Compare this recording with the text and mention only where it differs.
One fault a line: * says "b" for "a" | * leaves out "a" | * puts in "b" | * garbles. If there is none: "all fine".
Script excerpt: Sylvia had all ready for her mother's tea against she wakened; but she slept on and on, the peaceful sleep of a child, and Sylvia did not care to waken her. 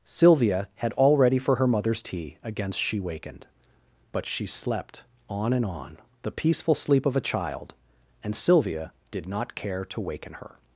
all fine